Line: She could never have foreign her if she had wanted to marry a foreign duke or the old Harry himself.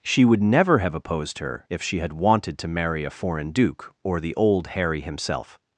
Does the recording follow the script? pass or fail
fail